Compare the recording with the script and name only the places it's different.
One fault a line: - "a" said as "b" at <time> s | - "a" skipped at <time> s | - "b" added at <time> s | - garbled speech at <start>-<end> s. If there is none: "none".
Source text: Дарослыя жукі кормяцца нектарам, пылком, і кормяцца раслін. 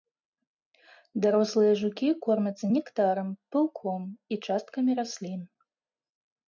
- "кормяцца" said as "часткамі" at 4.5 s